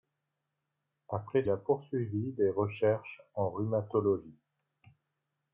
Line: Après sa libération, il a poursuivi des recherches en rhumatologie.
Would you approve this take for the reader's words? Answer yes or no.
no